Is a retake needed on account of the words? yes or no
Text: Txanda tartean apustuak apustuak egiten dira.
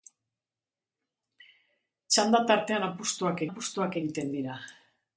no